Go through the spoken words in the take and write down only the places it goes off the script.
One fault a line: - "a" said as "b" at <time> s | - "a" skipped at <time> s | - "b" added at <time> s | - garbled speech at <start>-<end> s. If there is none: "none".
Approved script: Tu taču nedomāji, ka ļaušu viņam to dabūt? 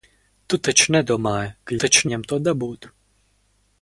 - "ļaušu" said as "taču" at 1.8 s